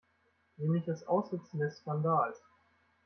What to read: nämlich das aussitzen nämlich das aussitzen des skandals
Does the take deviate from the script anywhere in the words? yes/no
yes